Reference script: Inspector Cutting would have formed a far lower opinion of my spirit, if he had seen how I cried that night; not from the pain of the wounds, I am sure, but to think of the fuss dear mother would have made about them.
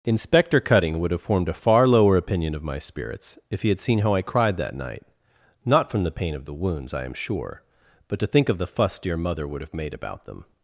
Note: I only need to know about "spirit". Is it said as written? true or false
false